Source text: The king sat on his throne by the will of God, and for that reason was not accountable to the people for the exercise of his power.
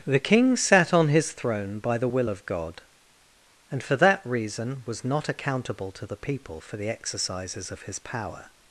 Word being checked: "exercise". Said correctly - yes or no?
no